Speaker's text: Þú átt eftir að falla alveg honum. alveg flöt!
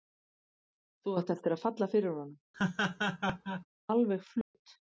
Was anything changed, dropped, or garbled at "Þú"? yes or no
no